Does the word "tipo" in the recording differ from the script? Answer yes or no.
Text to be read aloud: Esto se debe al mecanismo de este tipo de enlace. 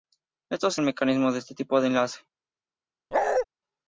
no